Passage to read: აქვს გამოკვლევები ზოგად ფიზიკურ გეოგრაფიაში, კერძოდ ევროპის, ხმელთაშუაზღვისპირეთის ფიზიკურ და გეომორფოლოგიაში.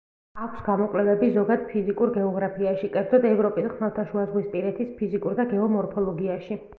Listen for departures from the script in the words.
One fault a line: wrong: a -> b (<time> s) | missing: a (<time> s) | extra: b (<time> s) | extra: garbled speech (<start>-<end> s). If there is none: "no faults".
no faults